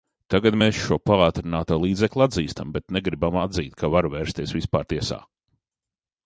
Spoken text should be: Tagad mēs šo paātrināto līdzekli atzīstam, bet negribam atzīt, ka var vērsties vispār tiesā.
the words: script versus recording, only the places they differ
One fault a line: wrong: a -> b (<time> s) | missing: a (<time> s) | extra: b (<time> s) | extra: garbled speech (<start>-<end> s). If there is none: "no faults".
no faults